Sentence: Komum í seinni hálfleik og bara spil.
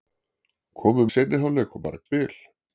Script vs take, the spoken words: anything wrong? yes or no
no